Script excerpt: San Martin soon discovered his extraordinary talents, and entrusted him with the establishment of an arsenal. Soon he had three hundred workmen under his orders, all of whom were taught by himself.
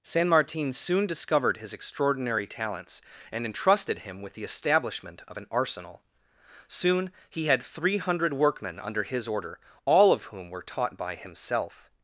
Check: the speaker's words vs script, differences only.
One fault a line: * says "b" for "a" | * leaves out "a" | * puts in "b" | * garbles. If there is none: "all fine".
* says "order" for "orders"